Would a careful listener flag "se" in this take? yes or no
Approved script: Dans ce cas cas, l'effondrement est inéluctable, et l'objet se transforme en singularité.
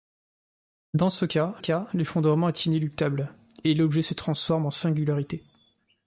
no